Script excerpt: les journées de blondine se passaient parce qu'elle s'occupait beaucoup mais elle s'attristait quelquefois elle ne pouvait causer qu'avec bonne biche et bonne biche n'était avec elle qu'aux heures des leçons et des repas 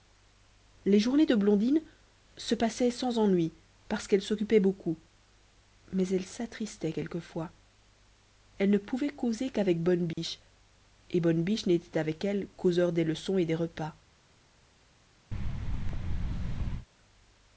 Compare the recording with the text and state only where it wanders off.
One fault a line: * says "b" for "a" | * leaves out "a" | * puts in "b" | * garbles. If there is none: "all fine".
* puts in "sans ennui"